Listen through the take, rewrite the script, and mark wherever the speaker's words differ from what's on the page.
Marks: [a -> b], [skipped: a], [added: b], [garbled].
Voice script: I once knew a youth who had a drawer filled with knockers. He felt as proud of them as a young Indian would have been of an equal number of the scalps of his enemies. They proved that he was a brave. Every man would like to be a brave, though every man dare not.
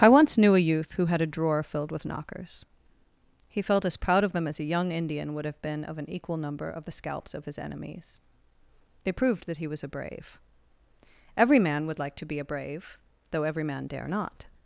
I once knew a youth who had a drawer filled with knockers. He felt as proud of them as a young Indian would have been of an equal number of the scalps of his enemies. They proved that he was a brave. Every man would like to be a brave, though every man dare not.